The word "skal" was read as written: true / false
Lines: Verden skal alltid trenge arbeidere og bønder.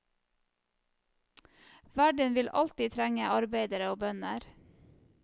false